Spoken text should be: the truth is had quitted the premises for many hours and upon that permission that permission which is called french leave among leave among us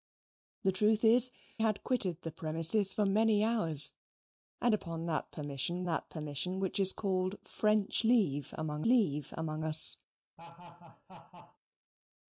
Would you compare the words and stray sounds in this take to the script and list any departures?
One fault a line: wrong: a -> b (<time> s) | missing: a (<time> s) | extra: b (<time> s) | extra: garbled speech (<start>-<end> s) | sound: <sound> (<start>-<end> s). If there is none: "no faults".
sound: laugh (10.4-11.6 s)